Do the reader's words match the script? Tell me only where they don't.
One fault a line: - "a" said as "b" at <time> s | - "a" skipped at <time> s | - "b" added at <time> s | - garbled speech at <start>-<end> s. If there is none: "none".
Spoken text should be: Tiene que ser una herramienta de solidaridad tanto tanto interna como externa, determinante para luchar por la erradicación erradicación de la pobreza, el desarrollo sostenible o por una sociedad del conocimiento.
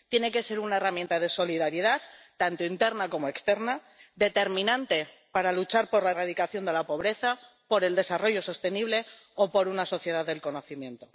- "tanto" skipped at 2.6 s
- "erradicación" skipped at 6.6 s
- "por" added at 7.7 s